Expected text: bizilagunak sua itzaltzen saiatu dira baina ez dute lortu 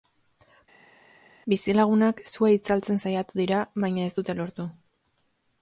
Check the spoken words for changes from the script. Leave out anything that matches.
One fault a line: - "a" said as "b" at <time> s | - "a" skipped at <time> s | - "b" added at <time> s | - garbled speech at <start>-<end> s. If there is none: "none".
none